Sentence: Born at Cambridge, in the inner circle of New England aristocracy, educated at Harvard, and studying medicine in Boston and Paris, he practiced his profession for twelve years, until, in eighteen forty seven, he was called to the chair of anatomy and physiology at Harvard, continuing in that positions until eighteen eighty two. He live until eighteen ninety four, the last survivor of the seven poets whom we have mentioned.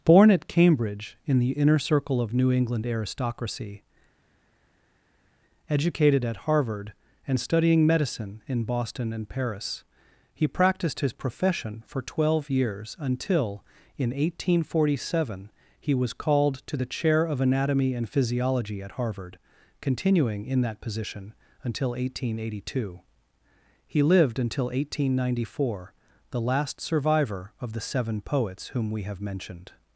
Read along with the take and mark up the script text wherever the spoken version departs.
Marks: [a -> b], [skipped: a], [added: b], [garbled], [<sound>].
Born at Cambridge, in the inner circle of New England aristocracy, educated at Harvard, and studying medicine in Boston and Paris, he practiced his profession for twelve years, until, in eighteen forty seven, he was called to the chair of anatomy and physiology at Harvard, continuing in that [positions -> position] until eighteen eighty two. He [live -> lived] until eighteen ninety four, the last survivor of the seven poets whom we have mentioned.